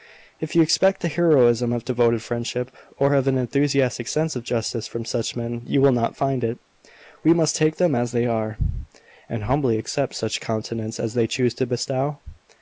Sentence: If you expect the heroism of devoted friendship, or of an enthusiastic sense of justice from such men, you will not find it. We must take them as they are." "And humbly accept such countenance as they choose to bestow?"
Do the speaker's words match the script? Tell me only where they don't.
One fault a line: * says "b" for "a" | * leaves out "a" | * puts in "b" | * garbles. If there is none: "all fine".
all fine